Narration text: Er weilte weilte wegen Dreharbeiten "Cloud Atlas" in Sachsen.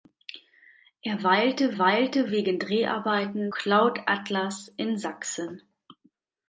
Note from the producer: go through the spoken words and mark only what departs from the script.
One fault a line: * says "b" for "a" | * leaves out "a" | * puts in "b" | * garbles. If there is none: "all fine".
all fine